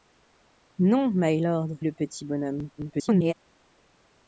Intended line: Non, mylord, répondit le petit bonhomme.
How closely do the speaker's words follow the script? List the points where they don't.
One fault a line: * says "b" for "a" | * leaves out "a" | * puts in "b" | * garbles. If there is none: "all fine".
* leaves out "répondit"
* garbles